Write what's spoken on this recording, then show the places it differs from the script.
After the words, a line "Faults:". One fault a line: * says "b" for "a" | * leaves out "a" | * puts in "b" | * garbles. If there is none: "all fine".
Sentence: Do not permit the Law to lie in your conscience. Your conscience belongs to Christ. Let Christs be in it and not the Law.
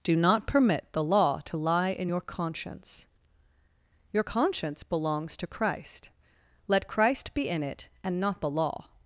Do not permit the Law to lie in your conscience. Your conscience belongs to Christ. Let Christ be in it and not the Law.
Faults:
* says "Christ" for "Christs"